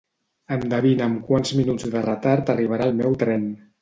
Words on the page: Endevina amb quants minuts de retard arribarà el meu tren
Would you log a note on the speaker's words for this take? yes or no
no